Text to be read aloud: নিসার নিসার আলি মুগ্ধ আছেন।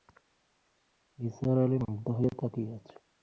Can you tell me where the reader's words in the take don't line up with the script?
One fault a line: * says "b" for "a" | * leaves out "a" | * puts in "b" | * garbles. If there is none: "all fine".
* leaves out "নিসার"
* puts in "হয়ে তাকিয়ে"